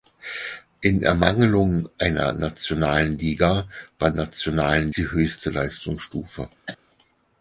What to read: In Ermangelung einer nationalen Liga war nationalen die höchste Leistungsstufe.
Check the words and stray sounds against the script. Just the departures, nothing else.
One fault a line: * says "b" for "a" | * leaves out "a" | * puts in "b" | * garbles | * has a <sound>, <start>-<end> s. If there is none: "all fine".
* has a cough, 6.7-6.8 s